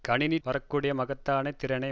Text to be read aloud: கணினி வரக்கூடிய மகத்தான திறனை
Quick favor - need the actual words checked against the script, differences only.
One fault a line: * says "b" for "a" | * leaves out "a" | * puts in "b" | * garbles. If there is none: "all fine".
all fine